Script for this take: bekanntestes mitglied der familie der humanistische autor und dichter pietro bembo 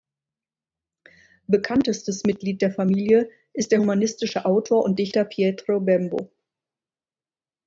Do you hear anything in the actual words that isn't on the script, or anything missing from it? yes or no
yes